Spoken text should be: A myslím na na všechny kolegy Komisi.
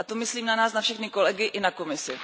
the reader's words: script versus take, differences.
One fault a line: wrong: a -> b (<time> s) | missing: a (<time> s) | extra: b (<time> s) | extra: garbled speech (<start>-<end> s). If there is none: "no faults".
extra: to (0.0 s)
extra: nás (0.6 s)
extra: i na (1.4 s)